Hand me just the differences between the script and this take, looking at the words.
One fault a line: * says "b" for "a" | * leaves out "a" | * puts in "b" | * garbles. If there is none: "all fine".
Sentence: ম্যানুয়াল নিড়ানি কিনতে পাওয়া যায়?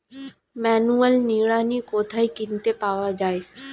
* puts in "কোথায়"